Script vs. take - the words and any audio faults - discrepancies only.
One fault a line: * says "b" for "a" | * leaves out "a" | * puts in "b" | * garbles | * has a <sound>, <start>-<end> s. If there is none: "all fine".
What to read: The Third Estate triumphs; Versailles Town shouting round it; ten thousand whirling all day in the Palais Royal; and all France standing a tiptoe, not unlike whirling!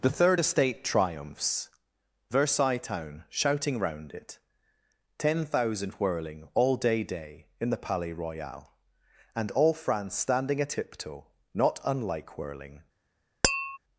* puts in "day"
* has a tap, 13.4-13.8 s